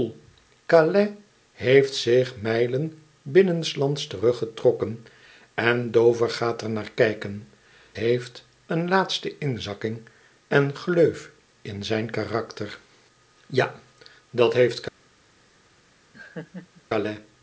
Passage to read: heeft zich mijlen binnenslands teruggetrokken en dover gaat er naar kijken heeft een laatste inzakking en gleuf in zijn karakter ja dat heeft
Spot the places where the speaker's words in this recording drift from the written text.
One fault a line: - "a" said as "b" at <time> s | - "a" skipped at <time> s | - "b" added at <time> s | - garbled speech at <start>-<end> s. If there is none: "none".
none